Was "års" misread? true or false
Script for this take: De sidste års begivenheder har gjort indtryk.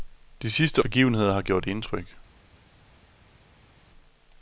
true